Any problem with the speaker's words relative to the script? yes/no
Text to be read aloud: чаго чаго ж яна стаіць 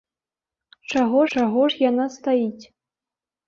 no